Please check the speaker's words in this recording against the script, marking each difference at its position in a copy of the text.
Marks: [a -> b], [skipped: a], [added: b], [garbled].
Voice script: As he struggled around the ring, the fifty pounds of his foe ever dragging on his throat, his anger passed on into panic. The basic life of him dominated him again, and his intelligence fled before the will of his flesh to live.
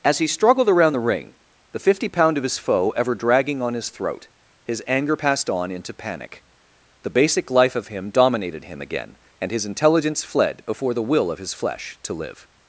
As he struggled around the ring, the fifty [pounds -> pound] of his foe ever dragging on his throat, his anger passed on into panic. The basic life of him dominated him again, and his intelligence fled before the will of his flesh to live.